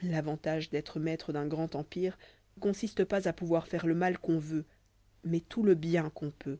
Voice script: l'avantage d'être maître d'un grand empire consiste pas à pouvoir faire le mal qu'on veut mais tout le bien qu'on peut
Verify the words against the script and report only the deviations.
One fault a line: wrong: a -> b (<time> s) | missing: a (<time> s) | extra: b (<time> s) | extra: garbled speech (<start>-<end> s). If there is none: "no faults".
no faults